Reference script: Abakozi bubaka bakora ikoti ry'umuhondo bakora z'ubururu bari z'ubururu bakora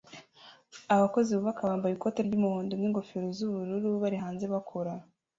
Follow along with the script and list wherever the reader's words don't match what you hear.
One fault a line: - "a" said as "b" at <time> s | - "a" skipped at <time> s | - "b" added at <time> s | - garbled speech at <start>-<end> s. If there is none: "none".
- "bakora" said as "bambaye" at 1.7 s
- "bakora" said as "n'ingofero" at 2.8 s
- "z'ubururu" said as "hanze" at 4.2 s